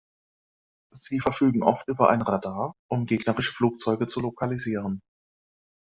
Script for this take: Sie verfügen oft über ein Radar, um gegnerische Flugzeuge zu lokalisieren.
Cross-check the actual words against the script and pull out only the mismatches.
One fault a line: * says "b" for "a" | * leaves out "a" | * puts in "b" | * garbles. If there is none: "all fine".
all fine